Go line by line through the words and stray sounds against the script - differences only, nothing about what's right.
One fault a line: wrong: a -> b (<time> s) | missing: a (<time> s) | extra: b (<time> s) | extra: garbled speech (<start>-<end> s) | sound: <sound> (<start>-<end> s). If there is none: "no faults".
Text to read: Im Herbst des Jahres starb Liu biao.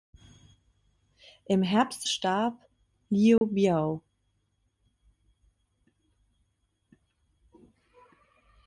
missing: des Jahres (2.1 s)
sound: dropout (3.4-3.4 s)